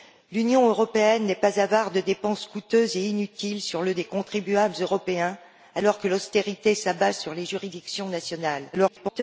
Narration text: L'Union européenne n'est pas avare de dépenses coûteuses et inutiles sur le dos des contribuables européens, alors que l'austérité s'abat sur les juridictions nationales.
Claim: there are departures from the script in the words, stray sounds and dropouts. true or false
true